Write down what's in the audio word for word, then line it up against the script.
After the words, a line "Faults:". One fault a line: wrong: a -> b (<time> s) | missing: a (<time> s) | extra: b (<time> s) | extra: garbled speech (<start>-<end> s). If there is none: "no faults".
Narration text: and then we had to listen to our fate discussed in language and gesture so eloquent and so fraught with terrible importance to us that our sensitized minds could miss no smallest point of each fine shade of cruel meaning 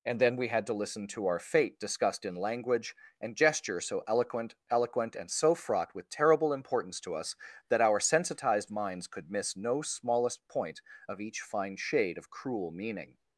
and then we had to listen to our fate discussed in language and gesture so eloquent eloquent and so fraught with terrible importance to us that our sensitized minds could miss no smallest point of each fine shade of cruel meaning
Faults:
extra: eloquent (4.7 s)